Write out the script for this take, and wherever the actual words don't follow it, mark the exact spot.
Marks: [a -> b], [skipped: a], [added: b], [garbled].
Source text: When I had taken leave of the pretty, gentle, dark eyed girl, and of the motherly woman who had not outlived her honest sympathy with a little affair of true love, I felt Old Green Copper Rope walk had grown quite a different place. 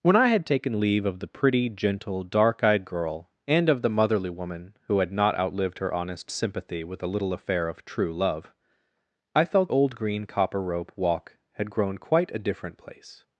When I had taken leave of the pretty, gentle, dark eyed girl, and of the motherly woman who had not outlived her honest sympathy with a little affair of true love, I felt Old Green Copper Rope walk had grown quite a different place.